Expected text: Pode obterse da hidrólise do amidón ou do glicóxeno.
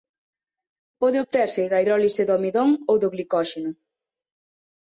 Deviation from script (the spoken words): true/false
false